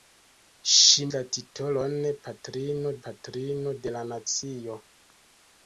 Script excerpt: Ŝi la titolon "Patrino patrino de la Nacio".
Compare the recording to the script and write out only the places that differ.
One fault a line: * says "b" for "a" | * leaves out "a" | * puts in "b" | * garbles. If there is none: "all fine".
all fine